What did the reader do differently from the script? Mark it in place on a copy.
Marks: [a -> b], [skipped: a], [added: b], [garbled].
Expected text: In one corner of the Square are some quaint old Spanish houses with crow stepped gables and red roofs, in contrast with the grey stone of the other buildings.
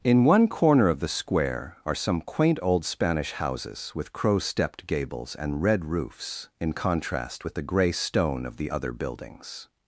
In one corner of the Square are some quaint old Spanish houses with crow stepped gables and red roofs, in contrast with the grey stone of the other buildings.